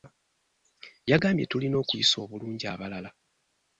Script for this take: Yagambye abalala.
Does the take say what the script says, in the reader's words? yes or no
no